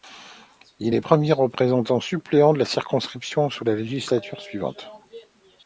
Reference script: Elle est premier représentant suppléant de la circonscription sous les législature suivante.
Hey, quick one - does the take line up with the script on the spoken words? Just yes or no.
no